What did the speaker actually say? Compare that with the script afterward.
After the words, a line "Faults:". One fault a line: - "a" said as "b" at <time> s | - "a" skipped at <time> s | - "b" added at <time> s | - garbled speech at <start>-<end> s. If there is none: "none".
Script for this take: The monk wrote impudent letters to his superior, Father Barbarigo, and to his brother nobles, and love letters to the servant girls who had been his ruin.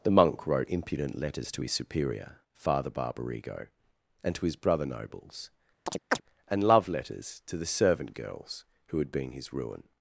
The monk wrote impudent letters to his superior, Father Barbarigo, and to his brother nobles, and love letters to the servant girls who had been his ruin.
Faults:
none